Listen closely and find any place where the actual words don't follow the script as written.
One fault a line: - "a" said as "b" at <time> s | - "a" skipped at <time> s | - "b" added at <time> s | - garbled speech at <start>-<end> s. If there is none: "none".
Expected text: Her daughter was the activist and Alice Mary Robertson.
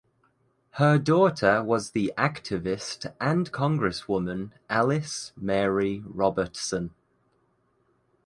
- "Congresswoman" added at 3.5 s